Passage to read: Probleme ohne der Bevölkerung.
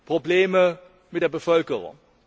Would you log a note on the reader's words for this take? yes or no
yes